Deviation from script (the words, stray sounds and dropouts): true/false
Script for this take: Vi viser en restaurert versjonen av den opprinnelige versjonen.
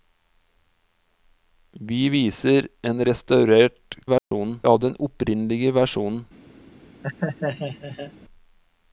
true